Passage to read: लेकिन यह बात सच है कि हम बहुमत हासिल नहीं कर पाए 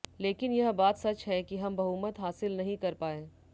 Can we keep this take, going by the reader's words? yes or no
yes